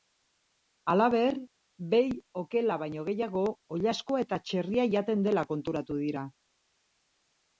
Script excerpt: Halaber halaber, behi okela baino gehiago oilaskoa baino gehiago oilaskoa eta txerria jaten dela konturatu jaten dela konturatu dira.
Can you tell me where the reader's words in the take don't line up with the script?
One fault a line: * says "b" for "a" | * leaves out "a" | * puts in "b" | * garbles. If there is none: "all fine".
* leaves out "halaber"
* leaves out "baino gehiago oilaskoa"
* leaves out "jaten dela konturatu"